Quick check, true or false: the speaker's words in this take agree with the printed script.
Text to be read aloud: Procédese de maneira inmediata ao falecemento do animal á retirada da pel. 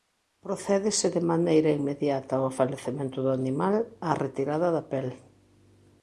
true